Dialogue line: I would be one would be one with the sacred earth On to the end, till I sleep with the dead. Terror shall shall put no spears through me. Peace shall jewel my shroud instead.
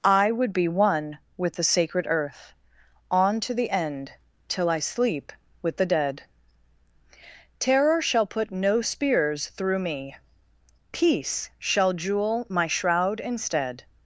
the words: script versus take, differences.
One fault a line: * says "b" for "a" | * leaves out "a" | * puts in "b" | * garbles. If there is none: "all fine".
* leaves out "would be one"
* leaves out "shall"